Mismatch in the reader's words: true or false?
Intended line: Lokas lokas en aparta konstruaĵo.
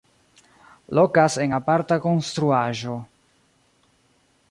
true